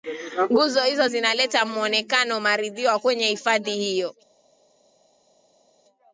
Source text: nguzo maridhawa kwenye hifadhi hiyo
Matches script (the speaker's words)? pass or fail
fail